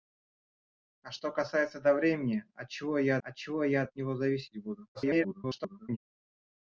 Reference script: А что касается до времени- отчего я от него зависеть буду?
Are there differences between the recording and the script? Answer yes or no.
yes